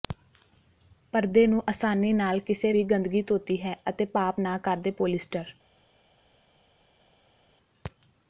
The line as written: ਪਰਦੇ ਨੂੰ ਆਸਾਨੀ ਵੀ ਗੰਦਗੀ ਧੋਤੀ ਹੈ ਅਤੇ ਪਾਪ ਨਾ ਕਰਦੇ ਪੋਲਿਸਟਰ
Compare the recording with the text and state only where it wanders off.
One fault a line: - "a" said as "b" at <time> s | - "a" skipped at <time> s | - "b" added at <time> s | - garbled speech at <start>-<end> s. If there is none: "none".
- "ਨਾਲ ਕਿਸੇ" added at 2.1 s